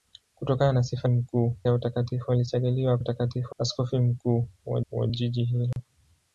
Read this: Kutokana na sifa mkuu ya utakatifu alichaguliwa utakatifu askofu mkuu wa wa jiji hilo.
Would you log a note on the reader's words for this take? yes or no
no